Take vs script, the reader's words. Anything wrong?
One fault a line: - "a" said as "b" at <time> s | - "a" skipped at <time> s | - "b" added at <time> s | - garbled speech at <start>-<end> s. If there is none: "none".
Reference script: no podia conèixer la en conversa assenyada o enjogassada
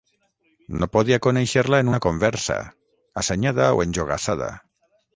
- "una" added at 1.9 s